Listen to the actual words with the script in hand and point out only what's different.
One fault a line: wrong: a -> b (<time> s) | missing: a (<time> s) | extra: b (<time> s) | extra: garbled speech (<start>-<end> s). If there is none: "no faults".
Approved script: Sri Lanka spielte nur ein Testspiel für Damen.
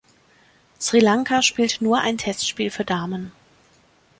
no faults